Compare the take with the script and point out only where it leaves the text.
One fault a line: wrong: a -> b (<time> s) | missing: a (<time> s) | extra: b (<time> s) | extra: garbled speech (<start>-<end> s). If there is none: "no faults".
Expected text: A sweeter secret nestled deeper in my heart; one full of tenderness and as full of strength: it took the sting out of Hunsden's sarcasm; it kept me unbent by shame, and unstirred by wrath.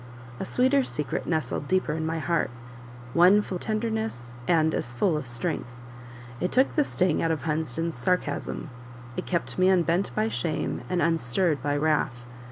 missing: of (3.6 s)